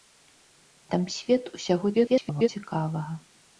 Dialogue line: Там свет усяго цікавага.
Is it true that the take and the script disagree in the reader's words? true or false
true